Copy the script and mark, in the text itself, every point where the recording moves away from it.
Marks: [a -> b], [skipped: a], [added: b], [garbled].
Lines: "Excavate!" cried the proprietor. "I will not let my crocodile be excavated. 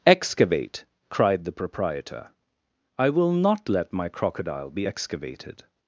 "Excavate!" cried the proprietor. "I will not let my crocodile be excavated.